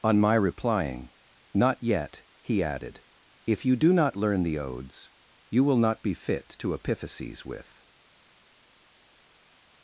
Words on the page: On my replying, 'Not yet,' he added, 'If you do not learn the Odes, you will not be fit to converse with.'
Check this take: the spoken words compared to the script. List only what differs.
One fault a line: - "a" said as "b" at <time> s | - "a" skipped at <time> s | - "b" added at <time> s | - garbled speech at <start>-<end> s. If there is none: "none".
- "converse" said as "epiphyses" at 6.7 s